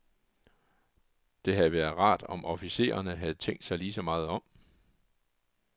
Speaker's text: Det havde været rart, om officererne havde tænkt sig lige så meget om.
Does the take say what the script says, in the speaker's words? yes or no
yes